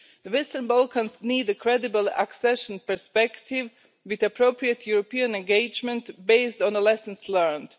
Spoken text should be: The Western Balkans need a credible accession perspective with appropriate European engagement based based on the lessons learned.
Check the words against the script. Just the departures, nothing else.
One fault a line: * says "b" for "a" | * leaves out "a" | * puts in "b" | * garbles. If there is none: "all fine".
* leaves out "based"